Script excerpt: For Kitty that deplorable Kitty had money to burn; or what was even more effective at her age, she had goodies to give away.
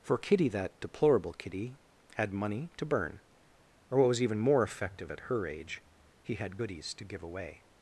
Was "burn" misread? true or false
false